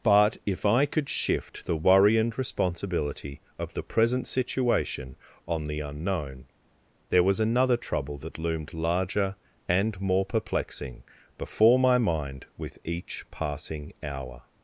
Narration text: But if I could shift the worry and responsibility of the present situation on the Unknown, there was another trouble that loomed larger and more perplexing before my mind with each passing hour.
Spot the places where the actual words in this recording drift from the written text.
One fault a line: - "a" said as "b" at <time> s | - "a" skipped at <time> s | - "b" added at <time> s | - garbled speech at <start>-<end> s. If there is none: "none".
none